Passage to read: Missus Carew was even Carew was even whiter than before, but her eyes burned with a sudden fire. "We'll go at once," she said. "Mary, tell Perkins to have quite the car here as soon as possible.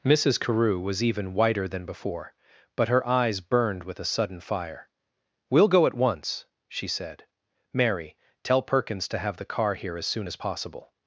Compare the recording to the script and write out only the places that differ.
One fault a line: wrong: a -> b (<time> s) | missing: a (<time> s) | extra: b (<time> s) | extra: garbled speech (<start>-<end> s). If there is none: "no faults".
missing: Carew was even (1.4 s)
missing: quite (9.4 s)